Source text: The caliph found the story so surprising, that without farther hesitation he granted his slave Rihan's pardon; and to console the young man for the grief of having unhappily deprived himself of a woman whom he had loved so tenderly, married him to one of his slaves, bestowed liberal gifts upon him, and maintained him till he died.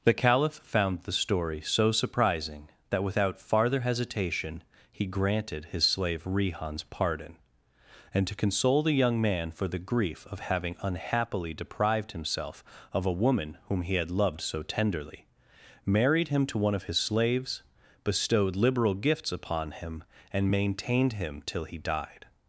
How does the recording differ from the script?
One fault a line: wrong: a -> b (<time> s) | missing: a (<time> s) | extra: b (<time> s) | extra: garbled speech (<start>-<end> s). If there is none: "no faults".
no faults